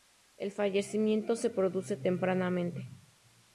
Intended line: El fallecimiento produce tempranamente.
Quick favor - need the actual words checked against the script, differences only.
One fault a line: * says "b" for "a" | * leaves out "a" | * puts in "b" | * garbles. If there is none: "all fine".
* puts in "se"